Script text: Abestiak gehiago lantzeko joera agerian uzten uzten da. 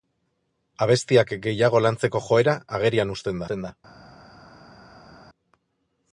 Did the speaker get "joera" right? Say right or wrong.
right